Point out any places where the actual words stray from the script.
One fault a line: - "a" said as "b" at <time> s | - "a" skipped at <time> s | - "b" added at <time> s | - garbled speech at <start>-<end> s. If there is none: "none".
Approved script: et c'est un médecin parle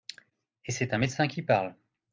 - "qui" added at 1.3 s